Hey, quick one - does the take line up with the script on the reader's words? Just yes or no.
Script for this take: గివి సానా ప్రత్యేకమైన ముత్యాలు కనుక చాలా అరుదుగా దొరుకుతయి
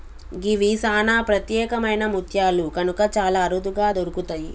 yes